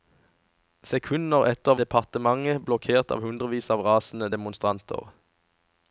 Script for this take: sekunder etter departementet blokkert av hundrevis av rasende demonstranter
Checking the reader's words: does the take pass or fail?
pass